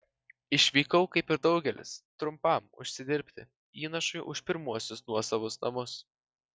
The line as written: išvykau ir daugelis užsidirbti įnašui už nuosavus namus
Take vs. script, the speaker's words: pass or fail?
fail